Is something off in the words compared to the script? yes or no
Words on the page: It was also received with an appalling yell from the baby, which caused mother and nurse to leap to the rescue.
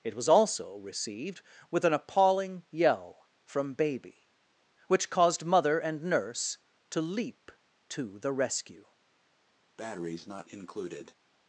yes